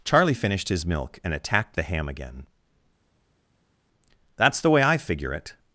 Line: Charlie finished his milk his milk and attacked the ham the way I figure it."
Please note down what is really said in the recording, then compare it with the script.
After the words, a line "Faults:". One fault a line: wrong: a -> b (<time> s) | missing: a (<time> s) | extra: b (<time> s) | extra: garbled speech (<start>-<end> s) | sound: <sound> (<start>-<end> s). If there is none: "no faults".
Charlie finished his milk and attacked the ham again. "That's the way I figure it."
Faults:
missing: his milk (1.2 s)
extra: again That's (2.1 s)